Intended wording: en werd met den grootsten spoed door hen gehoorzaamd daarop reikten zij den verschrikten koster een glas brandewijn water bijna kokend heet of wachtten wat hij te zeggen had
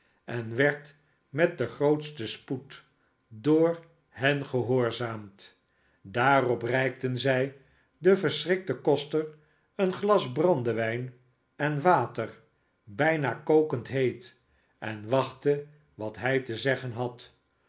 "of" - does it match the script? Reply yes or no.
no